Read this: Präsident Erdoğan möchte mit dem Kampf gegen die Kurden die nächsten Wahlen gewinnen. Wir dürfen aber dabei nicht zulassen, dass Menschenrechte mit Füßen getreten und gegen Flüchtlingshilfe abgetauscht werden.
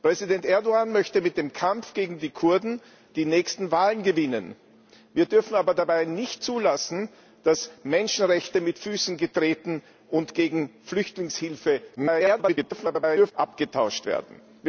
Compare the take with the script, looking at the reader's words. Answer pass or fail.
fail